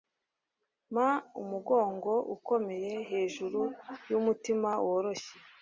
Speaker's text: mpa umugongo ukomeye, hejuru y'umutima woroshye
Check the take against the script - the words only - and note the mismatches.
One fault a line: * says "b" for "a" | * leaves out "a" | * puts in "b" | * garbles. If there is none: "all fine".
all fine